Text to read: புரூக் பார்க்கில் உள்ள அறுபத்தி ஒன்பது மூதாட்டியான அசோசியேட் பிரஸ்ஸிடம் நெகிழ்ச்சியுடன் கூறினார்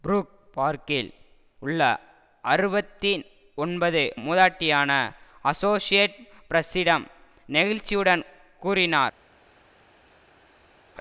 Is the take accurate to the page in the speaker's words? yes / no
yes